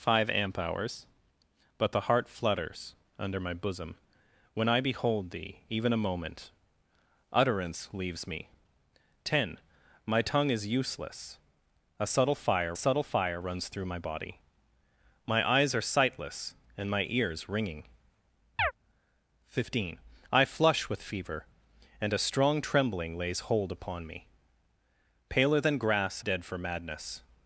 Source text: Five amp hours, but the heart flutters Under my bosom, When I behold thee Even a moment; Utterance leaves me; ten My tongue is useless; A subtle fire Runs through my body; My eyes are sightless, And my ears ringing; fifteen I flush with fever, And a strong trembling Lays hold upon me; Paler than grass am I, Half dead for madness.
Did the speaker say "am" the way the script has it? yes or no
no